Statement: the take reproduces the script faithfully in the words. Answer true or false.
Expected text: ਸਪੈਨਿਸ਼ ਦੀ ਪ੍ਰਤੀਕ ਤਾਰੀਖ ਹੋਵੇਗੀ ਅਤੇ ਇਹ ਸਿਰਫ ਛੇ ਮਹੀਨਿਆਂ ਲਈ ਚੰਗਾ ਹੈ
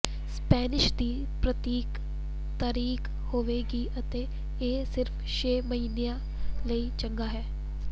true